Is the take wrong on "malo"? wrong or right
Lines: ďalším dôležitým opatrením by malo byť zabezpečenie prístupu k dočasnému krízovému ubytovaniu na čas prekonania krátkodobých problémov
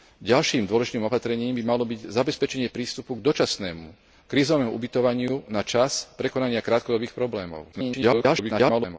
right